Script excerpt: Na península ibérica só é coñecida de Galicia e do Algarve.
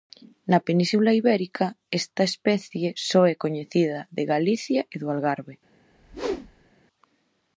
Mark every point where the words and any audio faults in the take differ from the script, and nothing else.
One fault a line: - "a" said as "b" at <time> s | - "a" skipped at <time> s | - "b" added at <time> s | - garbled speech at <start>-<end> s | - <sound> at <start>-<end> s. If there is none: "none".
- "esta especie" added at 2.0 s
- whoosh at 5.9-6.7 s